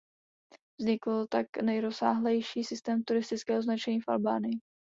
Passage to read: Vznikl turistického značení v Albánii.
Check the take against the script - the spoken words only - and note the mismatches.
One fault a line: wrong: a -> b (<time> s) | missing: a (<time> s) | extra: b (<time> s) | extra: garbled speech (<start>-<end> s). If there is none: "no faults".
extra: tak nejrozsáhlejší systém (1.3 s)